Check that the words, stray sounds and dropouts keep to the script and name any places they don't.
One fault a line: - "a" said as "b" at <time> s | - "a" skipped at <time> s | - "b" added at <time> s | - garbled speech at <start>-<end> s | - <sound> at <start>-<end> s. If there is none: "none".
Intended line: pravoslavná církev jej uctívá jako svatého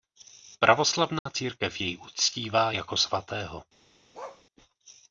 - dropout at 1.2-1.3 s
- bark at 4.1-4.4 s